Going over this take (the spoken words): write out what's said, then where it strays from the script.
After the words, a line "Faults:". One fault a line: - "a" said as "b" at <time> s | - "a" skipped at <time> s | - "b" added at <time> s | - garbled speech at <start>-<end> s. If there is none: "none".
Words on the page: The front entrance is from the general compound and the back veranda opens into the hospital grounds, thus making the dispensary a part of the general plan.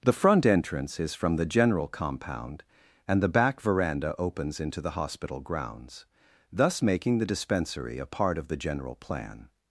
The front entrance is from the general compound and the back veranda opens into the hospital grounds, thus making the dispensary a part of the general plan.
Faults:
none